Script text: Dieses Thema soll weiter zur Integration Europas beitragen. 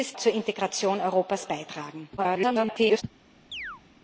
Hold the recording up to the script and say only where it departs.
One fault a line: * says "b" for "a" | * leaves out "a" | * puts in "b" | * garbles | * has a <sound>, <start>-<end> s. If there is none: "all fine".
* leaves out "Thema soll weiter"
* garbles
* has a chirp, 3.5-3.8 s